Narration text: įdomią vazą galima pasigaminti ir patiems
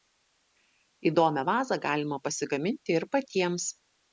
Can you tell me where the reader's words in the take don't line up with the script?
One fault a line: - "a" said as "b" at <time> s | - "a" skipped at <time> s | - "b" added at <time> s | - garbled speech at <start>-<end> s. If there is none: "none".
none